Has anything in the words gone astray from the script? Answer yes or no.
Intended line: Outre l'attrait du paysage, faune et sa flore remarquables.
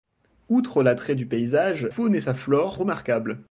no